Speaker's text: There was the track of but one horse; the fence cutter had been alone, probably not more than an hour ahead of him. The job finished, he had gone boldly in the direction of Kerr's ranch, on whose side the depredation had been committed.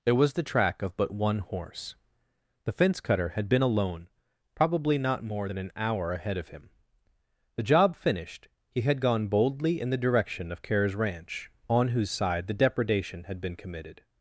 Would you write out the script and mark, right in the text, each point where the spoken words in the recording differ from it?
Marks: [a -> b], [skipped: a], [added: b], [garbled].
There was the track of but one horse; the fence cutter had been alone, probably not more than an hour ahead of him. The job finished, he had gone boldly in the direction of Kerr's ranch, on whose side the depredation had been committed.